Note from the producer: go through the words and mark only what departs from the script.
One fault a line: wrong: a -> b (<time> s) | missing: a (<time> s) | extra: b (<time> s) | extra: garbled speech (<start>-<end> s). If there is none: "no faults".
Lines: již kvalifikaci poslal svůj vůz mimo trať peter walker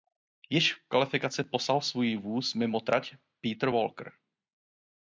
extra: v (0.7 s)